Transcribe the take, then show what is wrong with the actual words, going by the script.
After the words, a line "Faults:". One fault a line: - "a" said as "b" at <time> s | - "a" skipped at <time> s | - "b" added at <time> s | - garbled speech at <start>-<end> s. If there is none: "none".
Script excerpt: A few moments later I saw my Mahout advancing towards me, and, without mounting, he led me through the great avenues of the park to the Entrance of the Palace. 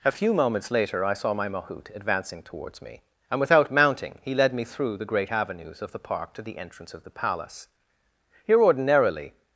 A few moments later I saw my Mahout advancing towards me, and, without mounting, he led me through the great avenues of the park to the Entrance of the Palace. Here ordinarily
Faults:
- "Here ordinarily" added at 8.5 s